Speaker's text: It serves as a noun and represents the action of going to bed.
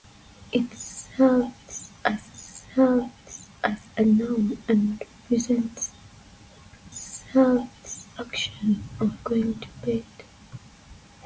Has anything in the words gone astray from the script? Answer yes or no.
yes